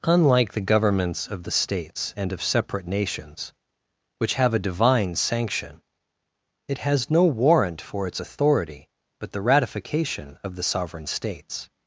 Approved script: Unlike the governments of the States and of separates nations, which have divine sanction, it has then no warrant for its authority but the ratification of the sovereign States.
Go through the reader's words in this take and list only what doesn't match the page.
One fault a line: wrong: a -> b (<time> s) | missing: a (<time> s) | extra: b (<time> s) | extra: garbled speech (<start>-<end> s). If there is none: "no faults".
wrong: separates -> separate (2.4 s)
extra: a (4.5 s)
missing: then (7.1 s)